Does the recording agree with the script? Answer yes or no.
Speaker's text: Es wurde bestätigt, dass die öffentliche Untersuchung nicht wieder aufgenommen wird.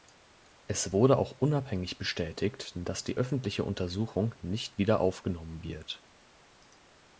no